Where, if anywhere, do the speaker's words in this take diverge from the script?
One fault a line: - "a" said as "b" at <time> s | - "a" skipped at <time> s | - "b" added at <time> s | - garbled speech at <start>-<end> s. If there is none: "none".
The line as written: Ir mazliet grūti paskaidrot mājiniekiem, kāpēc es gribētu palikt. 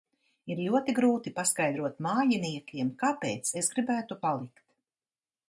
- "mazliet" said as "ļoti" at 0.7 s